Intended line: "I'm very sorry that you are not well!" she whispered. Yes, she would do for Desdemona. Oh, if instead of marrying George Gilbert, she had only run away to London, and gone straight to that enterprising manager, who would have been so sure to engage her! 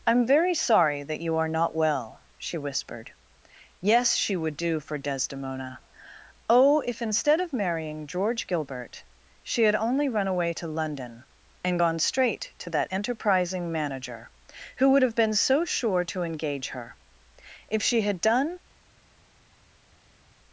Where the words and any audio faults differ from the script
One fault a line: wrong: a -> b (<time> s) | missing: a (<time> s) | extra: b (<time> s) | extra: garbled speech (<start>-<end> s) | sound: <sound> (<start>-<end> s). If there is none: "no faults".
extra: If she had done (17.7 s)